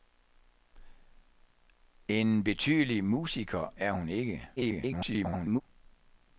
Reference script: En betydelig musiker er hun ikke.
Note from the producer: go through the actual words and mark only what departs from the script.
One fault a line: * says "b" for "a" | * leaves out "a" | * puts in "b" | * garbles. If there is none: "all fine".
* garbles